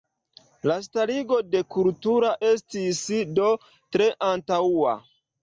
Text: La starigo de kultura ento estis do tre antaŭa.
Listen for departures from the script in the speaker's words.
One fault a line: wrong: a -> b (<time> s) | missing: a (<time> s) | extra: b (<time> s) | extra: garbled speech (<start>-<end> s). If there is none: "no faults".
missing: ento (2.3 s)